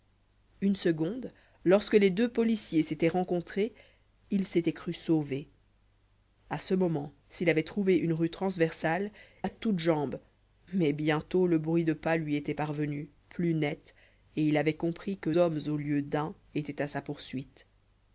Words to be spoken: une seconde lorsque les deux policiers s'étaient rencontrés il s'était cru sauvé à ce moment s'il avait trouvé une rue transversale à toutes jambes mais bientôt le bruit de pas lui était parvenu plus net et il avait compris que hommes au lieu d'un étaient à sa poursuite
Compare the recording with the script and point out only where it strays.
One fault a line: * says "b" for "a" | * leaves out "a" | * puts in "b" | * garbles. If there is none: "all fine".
all fine